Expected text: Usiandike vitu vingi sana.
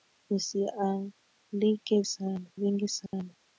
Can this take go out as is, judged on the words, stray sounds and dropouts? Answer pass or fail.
fail